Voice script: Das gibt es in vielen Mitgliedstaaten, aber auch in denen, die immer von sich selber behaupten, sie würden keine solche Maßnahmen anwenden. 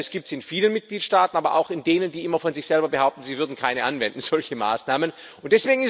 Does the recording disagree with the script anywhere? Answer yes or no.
no